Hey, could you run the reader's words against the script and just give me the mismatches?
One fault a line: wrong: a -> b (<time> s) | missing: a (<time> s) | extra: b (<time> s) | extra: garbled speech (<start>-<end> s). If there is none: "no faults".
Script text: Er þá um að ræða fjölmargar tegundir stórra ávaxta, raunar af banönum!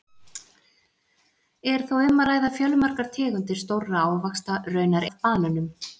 no faults